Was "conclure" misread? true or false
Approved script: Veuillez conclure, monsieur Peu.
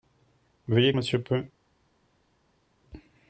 true